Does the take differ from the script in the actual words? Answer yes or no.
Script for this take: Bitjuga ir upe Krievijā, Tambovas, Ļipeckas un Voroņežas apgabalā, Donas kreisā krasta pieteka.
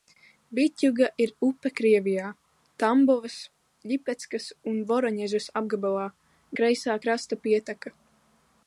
yes